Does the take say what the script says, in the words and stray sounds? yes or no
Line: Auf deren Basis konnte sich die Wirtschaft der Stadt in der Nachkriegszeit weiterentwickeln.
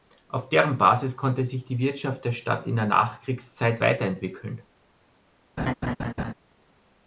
no